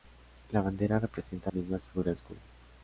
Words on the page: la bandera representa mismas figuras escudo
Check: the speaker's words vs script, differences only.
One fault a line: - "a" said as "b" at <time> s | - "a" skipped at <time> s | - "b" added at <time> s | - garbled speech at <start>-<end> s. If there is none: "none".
none